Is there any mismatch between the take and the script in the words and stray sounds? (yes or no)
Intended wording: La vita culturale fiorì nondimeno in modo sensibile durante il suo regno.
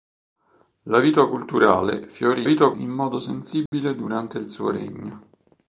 yes